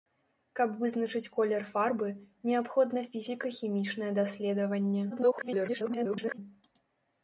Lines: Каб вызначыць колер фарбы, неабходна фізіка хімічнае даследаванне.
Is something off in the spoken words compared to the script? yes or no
yes